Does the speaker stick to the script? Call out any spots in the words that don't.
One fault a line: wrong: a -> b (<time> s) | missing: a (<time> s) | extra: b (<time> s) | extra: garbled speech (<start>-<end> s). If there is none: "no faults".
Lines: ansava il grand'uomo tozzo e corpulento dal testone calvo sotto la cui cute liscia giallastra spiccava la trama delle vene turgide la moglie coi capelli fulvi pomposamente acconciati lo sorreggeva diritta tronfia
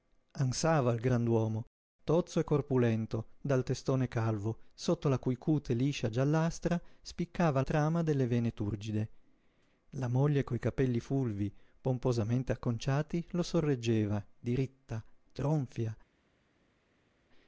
missing: la (7.6 s)